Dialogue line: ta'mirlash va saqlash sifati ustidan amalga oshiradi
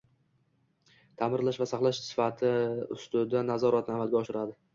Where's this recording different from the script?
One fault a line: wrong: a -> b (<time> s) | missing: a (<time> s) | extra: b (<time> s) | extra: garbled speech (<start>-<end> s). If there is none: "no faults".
extra: nazoratni (3.5 s)